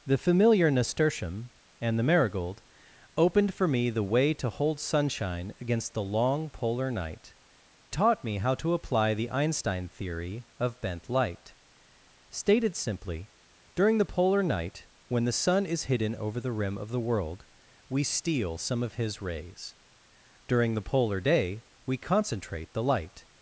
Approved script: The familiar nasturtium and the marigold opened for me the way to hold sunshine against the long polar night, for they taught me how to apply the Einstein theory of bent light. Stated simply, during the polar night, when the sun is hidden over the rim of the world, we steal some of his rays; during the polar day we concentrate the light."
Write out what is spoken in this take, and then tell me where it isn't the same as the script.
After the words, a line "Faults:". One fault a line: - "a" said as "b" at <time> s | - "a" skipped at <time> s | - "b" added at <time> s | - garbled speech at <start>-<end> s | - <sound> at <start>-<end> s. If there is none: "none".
The familiar nasturtium and the marigold opened for me the way to hold sunshine against the long polar night, taught me how to apply the Einstein theory of bent light. Stated simply, during the polar night, when the sun is hidden over the rim of the world, we steal some of his rays; during the polar day we concentrate the light."
Faults:
- "for they" skipped at 7.3 s